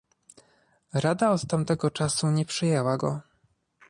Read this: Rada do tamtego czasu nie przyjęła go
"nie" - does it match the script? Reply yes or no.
yes